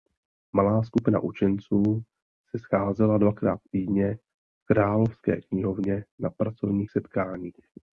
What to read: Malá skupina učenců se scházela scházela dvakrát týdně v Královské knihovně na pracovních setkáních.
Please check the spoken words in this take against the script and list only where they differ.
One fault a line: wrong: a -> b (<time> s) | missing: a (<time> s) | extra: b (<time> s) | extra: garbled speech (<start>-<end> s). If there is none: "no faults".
missing: scházela (3.2 s)